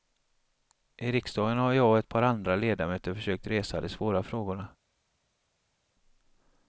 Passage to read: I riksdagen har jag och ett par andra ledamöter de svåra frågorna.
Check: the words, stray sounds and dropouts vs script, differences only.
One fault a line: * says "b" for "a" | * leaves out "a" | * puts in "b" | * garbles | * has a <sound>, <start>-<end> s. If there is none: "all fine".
* puts in "försökt resa"